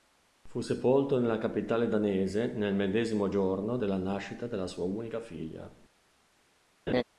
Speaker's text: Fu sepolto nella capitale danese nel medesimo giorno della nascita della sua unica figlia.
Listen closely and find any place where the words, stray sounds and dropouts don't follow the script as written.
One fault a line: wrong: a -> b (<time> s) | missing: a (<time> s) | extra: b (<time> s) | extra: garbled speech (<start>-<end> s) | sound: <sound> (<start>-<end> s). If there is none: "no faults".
sound: laugh (6.9-7.0 s)